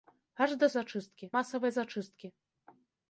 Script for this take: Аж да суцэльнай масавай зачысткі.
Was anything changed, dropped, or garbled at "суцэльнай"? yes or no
yes